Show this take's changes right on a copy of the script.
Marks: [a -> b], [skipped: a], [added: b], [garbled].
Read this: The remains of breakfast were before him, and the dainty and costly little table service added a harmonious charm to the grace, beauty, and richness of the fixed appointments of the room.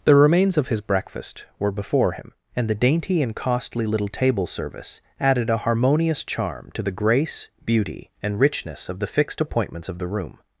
The remains of [added: his] breakfast were before him, and the dainty and costly little table service added a harmonious charm to the grace, beauty, and richness of the fixed appointments of the room.